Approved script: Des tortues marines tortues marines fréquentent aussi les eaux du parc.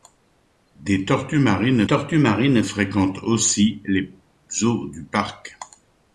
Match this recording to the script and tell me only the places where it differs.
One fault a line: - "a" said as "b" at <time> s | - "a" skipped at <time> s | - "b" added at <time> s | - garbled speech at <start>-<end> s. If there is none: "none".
none